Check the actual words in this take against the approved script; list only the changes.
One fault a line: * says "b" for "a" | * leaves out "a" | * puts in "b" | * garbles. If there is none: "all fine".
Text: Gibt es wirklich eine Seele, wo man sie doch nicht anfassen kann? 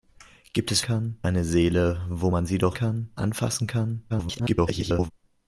* says "kann" for "wirklich"
* says "kann" for "nicht"
* garbles